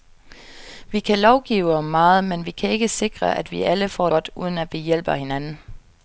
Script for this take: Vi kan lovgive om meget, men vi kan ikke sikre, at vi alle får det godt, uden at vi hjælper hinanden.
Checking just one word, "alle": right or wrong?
right